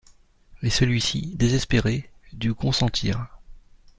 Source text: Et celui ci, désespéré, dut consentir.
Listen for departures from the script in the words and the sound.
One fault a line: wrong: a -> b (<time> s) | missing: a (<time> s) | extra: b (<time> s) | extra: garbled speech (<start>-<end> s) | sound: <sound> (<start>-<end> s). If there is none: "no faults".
no faults